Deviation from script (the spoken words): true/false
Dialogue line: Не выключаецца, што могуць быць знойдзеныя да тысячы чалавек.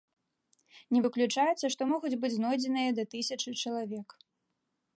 false